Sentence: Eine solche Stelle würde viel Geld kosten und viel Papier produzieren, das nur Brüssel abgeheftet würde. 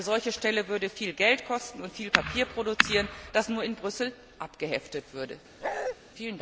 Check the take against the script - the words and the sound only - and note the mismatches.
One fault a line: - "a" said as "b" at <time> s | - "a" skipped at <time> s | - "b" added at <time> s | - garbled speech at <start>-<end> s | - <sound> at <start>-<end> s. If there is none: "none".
- "in" added at 3.6 s
- bark at 5.6-6.0 s